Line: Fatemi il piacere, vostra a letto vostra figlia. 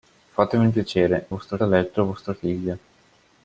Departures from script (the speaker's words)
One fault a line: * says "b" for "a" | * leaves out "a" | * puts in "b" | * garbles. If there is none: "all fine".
all fine